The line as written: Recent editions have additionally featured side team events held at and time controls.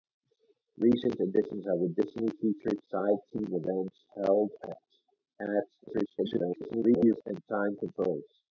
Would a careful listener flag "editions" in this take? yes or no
no